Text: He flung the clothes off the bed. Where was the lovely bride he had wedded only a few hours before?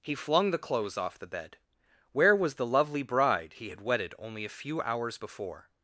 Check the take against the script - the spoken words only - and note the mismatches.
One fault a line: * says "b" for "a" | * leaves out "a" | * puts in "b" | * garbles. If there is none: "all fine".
all fine